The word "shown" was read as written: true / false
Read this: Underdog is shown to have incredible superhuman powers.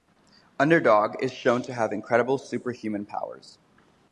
true